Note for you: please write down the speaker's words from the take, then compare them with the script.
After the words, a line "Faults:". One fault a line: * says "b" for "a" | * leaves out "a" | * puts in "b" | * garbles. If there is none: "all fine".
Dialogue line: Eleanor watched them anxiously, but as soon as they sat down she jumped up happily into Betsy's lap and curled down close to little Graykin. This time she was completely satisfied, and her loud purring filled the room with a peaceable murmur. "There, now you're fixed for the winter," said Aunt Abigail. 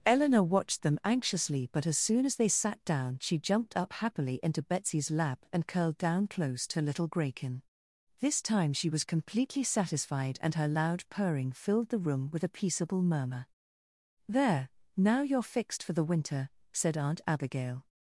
Eleanor watched them anxiously, but as soon as they sat down she jumped up happily into Betsy's lap and curled down close to little Graykin. This time she was completely satisfied, and her loud purring filled the room with a peaceable murmur. "There, now you're fixed for the winter," said Aunt Abigail.
Faults:
all fine